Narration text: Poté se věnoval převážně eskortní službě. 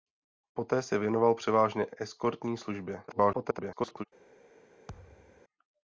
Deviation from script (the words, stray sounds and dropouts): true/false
true